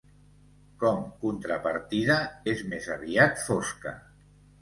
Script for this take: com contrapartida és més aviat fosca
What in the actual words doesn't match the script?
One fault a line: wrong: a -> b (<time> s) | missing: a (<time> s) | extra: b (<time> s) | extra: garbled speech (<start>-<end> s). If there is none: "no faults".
no faults